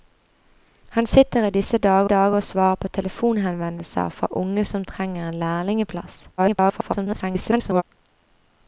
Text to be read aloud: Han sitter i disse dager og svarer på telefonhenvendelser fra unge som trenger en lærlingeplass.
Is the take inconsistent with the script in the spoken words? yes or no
yes